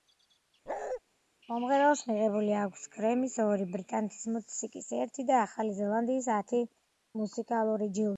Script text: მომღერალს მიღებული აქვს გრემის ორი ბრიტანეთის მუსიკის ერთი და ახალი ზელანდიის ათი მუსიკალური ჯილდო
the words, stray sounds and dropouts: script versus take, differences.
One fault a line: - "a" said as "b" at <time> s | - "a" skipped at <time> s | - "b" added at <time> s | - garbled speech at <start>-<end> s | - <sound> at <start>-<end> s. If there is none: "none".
- bark at 0.7-1.0 s